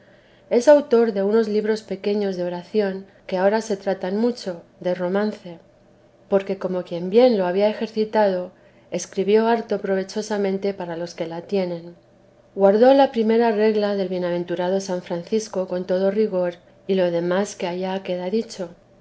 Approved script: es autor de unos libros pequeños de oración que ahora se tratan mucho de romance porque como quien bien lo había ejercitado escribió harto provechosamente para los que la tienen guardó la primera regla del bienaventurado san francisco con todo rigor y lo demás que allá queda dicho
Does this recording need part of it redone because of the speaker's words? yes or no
no